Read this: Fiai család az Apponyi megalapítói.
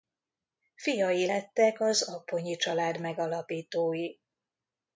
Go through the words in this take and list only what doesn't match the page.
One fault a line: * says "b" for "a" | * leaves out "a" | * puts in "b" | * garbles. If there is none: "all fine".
* says "lettek" for "család"
* puts in "család"